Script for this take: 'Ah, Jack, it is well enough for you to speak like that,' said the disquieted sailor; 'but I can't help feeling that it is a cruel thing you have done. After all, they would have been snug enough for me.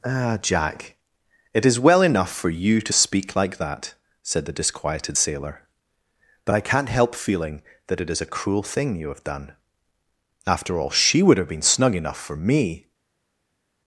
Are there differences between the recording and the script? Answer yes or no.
yes